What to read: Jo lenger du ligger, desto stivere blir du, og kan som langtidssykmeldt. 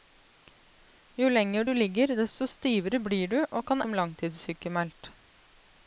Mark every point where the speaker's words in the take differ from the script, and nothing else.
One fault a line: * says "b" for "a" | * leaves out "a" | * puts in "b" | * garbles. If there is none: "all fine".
all fine